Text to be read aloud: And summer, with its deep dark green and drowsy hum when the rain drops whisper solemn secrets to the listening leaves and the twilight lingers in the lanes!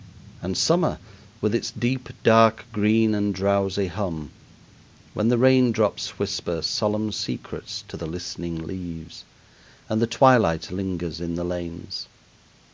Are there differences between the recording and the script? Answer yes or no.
no